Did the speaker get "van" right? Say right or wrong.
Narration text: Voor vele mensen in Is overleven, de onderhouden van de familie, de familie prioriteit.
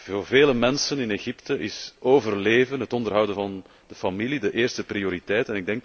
right